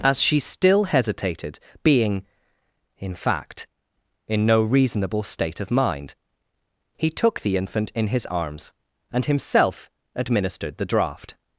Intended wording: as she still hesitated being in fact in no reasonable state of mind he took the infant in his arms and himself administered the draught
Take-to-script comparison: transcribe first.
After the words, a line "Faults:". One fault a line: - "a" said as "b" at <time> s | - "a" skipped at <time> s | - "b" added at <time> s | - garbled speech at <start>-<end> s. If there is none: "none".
as she still hesitated being in fact in no reasonable state of mind he took the infant in his arms and himself administered the draught
Faults:
none